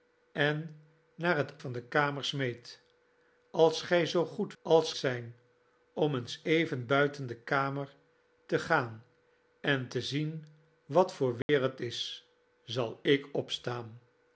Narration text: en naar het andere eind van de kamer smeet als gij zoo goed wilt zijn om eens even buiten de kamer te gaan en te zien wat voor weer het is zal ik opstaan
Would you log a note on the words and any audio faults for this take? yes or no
yes